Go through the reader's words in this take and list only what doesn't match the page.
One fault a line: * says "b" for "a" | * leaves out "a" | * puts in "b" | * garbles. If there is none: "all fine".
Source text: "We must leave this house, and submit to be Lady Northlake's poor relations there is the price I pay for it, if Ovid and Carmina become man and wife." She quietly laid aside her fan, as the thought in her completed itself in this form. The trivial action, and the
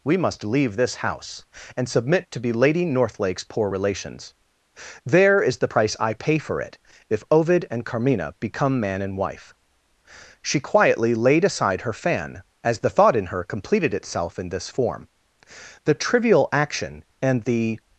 all fine